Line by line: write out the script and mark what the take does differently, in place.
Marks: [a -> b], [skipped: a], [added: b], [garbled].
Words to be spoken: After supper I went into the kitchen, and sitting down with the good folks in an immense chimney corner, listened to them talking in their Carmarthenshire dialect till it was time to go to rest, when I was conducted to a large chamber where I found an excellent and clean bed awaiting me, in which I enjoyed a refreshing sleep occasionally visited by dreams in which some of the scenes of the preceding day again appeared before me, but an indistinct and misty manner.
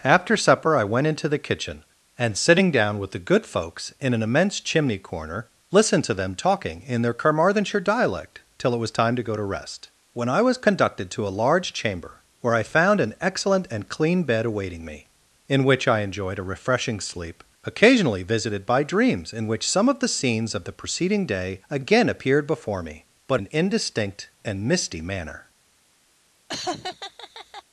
After supper I went into the kitchen, and sitting down with the good folks in an immense chimney corner, listened to them talking in their Carmarthenshire dialect till it was time to go to rest, when I was conducted to a large chamber where I found an excellent and clean bed awaiting me, in which I enjoyed a refreshing sleep occasionally visited by dreams in which some of the scenes of the preceding day again appeared before me, but an indistinct and misty manner.